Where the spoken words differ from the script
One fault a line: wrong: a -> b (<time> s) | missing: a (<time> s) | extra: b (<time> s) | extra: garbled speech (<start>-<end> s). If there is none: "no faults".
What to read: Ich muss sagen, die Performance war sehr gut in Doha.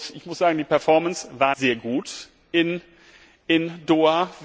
no faults